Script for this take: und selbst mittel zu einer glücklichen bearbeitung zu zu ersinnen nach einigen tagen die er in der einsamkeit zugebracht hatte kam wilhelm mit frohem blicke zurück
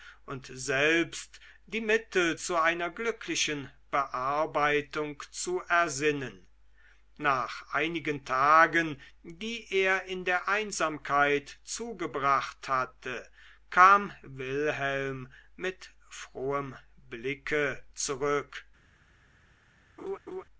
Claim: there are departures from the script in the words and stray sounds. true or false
true